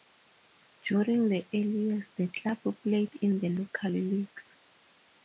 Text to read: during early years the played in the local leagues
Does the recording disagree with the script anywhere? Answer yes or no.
yes